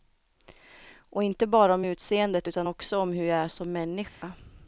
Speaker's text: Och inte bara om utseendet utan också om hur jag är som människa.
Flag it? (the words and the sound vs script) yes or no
yes